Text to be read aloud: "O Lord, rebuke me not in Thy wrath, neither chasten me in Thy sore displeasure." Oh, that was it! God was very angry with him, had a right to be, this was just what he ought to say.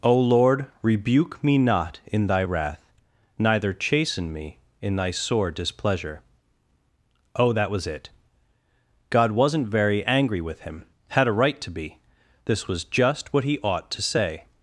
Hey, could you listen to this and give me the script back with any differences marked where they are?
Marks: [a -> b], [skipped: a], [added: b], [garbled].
"O Lord, rebuke me not in Thy wrath, neither chasten me in Thy sore displeasure." Oh, that was it! God [was -> wasn't] very angry with him, had a right to be, this was just what he ought to say.